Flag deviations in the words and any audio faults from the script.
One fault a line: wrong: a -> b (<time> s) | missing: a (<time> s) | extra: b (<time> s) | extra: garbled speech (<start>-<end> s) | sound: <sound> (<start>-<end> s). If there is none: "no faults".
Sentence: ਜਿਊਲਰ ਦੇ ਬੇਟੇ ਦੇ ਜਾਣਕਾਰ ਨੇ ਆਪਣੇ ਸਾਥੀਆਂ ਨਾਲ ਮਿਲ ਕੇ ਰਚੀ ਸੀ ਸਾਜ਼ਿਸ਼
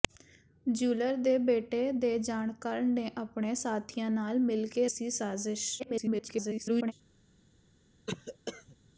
missing: ਰਚੀ (4.9 s)
extra: garbled speech (5.8-6.9 s)
sound: cough (8.1-8.8 s)